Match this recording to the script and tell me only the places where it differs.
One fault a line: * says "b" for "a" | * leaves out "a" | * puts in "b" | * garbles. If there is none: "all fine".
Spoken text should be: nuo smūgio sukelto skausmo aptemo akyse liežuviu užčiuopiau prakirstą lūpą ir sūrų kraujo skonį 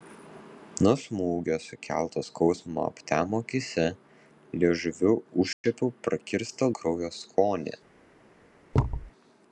* leaves out "lūpą ir sūrų"